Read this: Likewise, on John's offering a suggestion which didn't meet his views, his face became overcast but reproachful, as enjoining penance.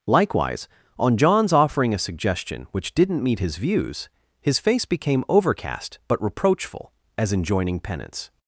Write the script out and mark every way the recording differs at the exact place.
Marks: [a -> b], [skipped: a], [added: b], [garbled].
Likewise, on John's offering a suggestion which didn't meet his views, his face became overcast but reproachful, as enjoining penance.